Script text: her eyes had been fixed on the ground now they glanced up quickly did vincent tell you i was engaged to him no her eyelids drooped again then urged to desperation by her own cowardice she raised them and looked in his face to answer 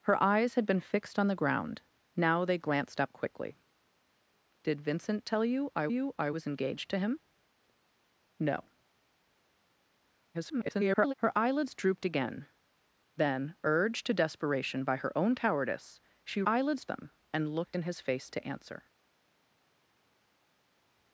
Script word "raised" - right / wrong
wrong